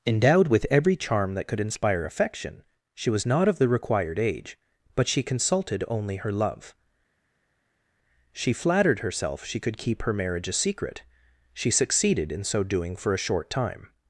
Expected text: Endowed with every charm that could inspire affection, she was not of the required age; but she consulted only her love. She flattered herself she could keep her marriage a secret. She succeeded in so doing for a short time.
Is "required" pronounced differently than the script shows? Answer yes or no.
no